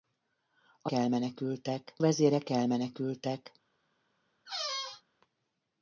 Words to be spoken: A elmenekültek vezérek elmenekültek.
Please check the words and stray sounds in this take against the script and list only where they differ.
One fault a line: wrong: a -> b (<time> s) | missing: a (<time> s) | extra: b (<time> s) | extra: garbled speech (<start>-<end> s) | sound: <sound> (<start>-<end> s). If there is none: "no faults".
sound: squeak (4.5-5.0 s)